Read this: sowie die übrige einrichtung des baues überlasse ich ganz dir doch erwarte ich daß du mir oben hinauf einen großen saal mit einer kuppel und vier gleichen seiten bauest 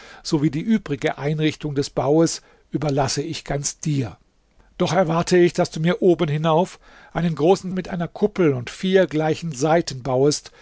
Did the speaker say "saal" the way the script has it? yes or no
no